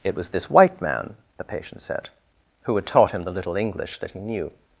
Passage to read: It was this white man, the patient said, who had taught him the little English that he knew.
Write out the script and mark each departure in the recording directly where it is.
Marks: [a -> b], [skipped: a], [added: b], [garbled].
It was this white man, the patient said, who had taught him the little English that he knew.